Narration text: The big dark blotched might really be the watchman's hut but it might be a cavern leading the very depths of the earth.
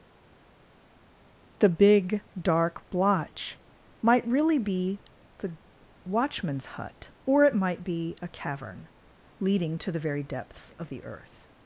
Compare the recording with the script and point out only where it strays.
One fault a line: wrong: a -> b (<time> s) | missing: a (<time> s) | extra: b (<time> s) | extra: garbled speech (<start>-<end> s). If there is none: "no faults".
wrong: blotched -> blotch (2.9 s)
wrong: but -> or (7.2 s)
extra: to (9.8 s)